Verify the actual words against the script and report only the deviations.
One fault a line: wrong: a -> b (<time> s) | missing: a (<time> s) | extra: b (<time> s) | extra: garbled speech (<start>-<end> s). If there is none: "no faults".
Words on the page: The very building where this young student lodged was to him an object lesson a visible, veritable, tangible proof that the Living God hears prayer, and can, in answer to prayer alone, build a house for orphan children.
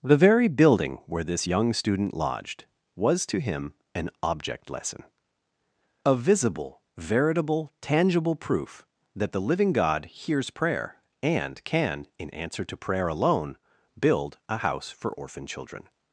no faults